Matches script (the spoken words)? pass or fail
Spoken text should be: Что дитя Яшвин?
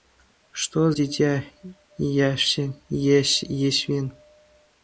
pass